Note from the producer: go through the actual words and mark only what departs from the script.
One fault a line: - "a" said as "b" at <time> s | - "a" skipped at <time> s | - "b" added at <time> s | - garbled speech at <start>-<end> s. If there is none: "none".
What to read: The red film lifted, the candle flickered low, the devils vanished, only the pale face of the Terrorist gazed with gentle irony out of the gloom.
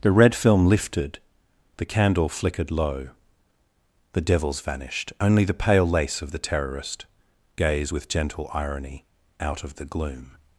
- "face" said as "lace" at 5.9 s
- "gazed" said as "gaze" at 7.6 s